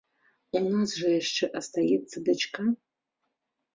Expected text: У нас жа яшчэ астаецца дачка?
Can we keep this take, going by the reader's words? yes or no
yes